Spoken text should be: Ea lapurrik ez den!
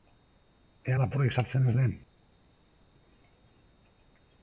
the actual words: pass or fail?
fail